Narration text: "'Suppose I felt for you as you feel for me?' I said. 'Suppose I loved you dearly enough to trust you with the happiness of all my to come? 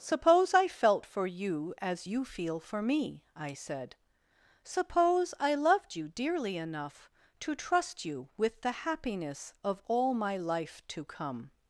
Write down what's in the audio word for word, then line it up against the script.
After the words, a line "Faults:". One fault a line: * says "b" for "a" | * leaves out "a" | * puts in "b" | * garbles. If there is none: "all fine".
"'Suppose I felt for you as you feel for me?' I said. 'Suppose I loved you dearly enough to trust you with the happiness of all my life to come?
Faults:
* puts in "life"